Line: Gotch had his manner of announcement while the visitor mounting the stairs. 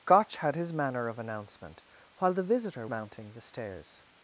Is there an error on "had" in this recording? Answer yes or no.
no